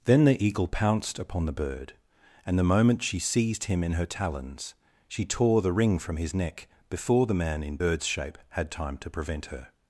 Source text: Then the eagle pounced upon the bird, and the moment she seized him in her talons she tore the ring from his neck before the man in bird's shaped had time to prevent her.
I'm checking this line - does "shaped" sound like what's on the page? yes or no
no